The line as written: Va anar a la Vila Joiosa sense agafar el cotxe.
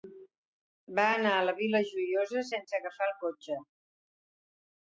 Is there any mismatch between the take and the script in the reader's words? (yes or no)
no